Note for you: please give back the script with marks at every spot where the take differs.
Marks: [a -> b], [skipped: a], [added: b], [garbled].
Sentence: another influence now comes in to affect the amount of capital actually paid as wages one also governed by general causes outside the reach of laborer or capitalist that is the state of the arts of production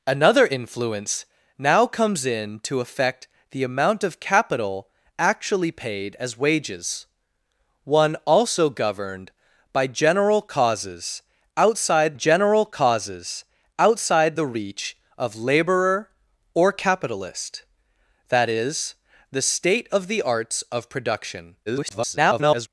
another influence now comes in to affect the amount of capital actually paid as wages one also governed by general causes outside [added: general causes outside] the reach of laborer or capitalist that is the state of the arts of production [garbled]